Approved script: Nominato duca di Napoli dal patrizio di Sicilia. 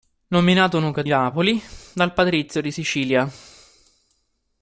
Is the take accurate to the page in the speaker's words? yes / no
no